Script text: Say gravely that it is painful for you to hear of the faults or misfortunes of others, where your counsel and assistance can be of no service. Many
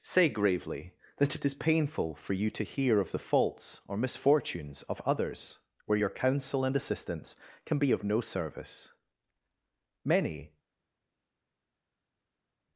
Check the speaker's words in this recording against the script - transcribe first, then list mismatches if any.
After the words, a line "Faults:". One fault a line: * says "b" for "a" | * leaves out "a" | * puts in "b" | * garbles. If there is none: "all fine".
Say gravely that it is painful for you to hear of the faults or misfortunes of others, where your counsel and assistance can be of no service. Many
Faults:
all fine